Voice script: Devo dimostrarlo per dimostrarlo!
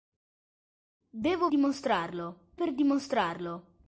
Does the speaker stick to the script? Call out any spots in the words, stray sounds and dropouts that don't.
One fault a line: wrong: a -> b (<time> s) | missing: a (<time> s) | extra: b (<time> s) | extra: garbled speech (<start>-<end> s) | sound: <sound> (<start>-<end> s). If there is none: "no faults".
no faults